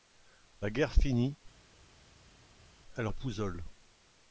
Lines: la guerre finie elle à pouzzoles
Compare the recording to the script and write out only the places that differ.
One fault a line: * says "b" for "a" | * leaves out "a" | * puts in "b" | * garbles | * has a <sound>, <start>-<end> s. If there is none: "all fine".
all fine